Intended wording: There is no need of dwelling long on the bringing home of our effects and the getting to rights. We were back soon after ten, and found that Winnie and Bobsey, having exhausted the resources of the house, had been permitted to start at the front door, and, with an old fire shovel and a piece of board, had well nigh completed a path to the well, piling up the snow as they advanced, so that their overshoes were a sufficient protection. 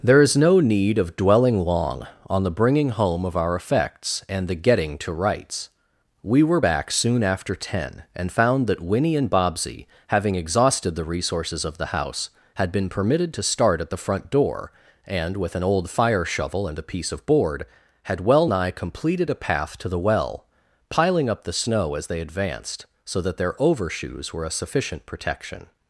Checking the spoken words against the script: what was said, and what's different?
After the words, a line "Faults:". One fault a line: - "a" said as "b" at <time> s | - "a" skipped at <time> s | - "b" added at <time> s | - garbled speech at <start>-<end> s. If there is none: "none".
There is no need of dwelling long on the bringing home of our effects and the getting to rights. We were back soon after ten, and found that Winnie and Bobsey, having exhausted the resources of the house, had been permitted to start at the front door, and, with an old fire shovel and a piece of board, had well nigh completed a path to the well, piling up the snow as they advanced, so that their overshoes were a sufficient protection.
Faults:
none